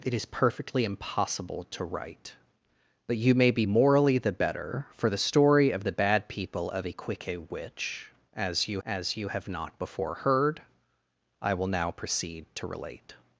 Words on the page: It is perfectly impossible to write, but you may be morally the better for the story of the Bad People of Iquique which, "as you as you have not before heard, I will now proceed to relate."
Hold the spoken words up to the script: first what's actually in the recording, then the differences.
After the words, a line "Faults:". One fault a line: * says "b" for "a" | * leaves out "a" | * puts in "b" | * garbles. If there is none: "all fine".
It is perfectly impossible to write, but you may be morally the better for the story of the Bad People of Iquique which, "as you as you have not before heard, I will now proceed to relate."
Faults:
all fine